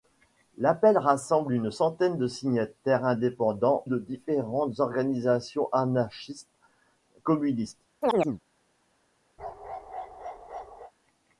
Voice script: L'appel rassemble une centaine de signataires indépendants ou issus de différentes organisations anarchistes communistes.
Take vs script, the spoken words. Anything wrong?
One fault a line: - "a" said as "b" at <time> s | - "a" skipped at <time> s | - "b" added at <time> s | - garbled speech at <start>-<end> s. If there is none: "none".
- "ou issus" skipped at 3.9 s